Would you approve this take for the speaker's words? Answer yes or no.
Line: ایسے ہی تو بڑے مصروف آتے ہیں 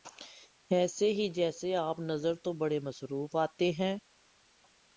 no